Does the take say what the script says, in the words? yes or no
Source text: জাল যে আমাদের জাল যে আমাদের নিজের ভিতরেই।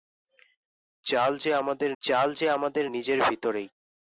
yes